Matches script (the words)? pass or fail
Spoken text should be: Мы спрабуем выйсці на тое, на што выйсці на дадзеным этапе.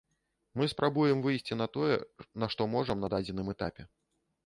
fail